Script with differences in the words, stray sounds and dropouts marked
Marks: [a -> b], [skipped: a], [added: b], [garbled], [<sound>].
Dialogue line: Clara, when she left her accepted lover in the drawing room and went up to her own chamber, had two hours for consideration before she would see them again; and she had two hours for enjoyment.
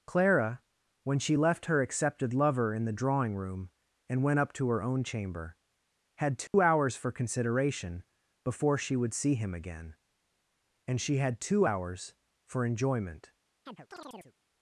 Clara, when she left her accepted lover in the drawing room and went up to her own chamber, had two [dropout] hours for consideration before she would see [them -> him] again; and she had two hours for enjoyment. [chirp]